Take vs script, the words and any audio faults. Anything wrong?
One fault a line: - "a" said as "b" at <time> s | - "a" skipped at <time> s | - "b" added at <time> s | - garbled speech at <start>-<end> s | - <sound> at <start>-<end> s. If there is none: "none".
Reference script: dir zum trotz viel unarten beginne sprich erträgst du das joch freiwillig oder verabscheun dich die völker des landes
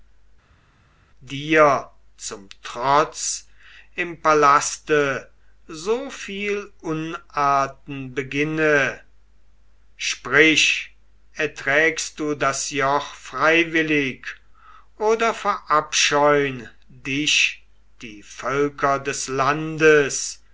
- "im palaste so" added at 3.9 s